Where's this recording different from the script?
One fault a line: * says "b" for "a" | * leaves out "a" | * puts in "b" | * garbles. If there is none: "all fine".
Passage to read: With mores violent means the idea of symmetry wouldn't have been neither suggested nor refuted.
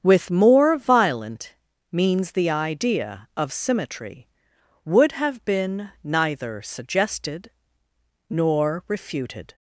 * says "more" for "mores"
* says "would" for "wouldn't"